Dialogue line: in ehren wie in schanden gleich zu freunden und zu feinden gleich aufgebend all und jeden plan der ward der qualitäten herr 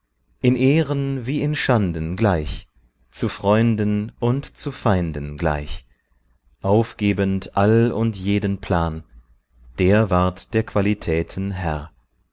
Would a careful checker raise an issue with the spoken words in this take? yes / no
no